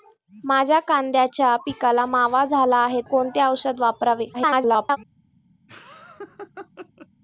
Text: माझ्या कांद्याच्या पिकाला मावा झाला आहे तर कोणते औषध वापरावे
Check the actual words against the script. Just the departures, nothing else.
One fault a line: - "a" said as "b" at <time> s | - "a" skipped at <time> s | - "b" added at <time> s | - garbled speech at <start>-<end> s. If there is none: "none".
- "तर" skipped at 3.0 s
- garbled speech at 4.3-5.0 s